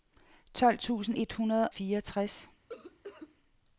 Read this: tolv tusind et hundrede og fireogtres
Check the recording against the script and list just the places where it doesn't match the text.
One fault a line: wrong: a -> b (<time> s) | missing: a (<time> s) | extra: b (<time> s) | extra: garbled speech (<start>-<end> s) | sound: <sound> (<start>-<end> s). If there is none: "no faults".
missing: og (1.7 s)
sound: cough (2.7-3.4 s)